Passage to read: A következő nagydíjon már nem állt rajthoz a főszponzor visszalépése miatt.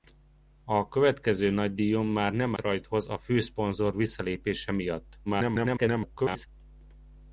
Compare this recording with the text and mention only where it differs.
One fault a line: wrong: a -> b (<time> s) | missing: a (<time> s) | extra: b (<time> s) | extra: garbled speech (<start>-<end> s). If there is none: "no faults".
missing: állt (2.5 s)
extra: garbled speech (5.3-6.5 s)